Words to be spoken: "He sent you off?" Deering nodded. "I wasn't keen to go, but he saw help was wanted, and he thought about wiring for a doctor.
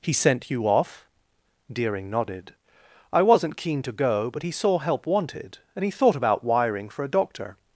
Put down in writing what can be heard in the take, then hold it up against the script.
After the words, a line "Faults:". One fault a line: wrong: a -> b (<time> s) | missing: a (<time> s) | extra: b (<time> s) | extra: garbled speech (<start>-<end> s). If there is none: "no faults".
"He sent you off?" Deering nodded. "I wasn't keen to go, but he saw help wanted, and he thought about wiring for a doctor.
Faults:
missing: was (5.0 s)